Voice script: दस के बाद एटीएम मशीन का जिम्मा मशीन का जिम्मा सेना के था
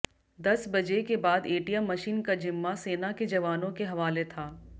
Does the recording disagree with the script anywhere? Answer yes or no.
yes